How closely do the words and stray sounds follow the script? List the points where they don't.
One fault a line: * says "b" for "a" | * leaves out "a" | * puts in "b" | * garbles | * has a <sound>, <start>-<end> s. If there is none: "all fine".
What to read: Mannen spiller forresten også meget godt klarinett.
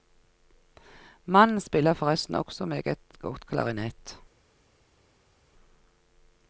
all fine